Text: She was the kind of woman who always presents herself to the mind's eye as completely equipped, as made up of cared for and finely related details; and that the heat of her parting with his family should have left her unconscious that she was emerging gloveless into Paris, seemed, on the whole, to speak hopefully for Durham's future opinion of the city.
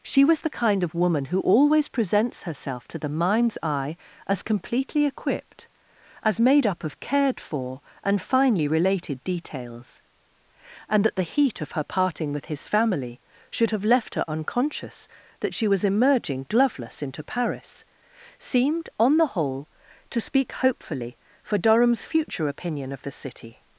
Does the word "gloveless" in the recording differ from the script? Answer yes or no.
no